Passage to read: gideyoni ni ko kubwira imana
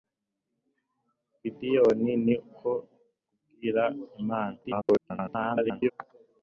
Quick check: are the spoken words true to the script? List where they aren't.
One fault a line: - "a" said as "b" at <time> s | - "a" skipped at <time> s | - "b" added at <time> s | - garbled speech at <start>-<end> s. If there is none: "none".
- garbled speech at 4.6-5.9 s